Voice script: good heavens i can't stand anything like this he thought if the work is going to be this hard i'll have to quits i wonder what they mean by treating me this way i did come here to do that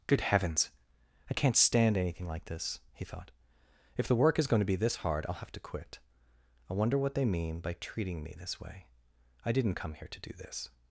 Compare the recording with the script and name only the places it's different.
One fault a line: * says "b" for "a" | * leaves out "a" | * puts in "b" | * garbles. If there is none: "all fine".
* says "quit" for "quits"
* says "didn't" for "did"
* says "this" for "that"